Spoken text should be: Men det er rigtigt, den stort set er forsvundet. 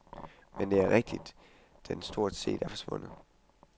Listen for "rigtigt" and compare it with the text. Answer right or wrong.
right